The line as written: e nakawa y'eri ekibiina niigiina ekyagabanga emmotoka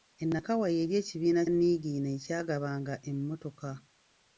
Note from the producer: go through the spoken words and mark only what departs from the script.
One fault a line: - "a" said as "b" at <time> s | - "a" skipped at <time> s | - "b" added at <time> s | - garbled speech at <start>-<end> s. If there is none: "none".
none